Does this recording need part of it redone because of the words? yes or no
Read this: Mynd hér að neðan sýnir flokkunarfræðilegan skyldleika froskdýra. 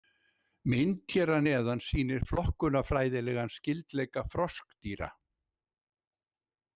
no